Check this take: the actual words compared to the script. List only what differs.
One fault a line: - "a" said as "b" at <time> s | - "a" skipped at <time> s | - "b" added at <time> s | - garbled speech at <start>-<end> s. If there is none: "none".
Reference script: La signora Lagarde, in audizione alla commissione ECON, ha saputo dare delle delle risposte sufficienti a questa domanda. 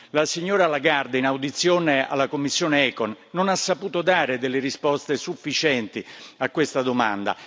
- "non" added at 3.3 s
- "delle" skipped at 4.6 s